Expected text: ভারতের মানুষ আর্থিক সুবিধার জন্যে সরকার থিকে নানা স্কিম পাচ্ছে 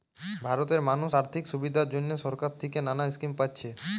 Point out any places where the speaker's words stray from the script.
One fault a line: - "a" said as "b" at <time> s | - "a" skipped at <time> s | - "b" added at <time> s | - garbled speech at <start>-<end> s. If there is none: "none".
none